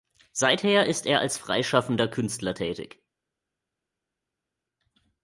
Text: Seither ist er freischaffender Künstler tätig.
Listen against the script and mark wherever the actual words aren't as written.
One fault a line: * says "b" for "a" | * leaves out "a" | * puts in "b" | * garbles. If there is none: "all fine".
* puts in "als"